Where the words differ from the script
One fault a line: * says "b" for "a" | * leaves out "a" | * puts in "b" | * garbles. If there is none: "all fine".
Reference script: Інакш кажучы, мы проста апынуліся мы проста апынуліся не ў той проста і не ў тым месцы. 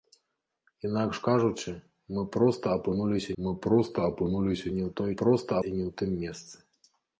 all fine